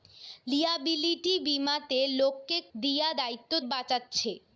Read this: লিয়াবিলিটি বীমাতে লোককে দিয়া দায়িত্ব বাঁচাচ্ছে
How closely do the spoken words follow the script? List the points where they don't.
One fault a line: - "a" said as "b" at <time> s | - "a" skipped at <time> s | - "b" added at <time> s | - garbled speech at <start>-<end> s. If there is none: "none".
none